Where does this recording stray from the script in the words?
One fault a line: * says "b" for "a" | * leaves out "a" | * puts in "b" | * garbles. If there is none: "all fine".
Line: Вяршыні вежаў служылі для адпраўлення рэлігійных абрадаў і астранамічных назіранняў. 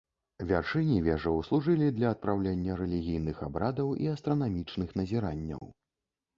all fine